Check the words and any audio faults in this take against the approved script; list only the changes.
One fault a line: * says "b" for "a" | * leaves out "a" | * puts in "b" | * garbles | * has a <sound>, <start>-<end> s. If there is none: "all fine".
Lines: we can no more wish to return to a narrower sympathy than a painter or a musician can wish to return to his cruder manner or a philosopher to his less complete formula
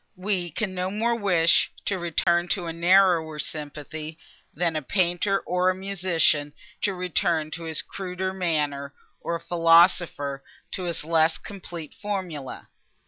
* has a dropout, 2.2-2.3 s
* leaves out "can wish"